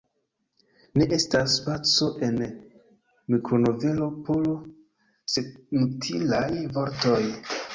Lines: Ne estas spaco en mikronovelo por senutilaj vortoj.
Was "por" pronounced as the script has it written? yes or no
yes